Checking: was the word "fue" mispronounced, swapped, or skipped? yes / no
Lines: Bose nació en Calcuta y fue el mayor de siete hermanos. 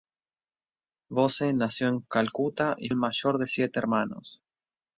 yes